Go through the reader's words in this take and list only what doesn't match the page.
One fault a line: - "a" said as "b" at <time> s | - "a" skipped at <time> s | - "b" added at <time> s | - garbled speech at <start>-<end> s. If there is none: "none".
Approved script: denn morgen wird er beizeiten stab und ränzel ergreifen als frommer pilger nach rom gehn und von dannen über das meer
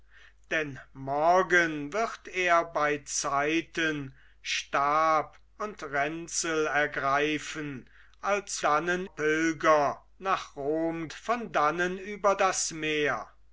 - "frommer" said as "dannen" at 8.6 s
- "gehn und" skipped at 11.1 s